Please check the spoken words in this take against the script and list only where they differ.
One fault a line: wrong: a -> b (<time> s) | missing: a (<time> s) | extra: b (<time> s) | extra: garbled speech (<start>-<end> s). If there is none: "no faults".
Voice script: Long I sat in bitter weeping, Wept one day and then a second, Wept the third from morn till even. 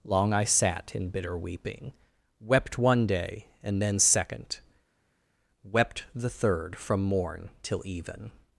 missing: a (4.0 s)